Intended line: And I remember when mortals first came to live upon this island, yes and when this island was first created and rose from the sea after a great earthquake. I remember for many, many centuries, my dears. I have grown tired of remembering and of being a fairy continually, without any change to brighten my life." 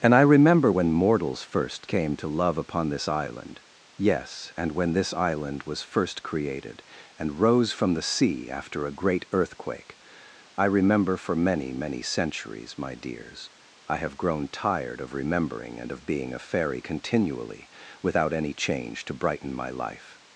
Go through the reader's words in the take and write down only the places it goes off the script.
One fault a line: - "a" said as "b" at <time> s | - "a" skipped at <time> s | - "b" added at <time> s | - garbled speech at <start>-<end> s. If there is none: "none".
- "live" said as "love" at 2.3 s